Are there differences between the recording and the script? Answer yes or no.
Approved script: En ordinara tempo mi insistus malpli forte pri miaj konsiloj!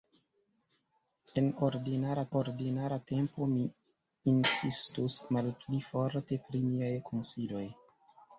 yes